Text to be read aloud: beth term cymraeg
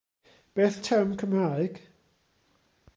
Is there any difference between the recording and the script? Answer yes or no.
no